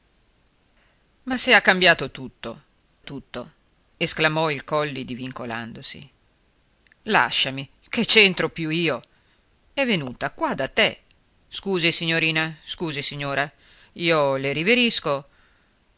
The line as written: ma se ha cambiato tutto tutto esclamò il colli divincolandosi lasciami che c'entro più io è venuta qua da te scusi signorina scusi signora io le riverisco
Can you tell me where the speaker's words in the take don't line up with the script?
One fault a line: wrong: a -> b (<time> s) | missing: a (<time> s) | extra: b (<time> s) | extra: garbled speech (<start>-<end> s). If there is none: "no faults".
no faults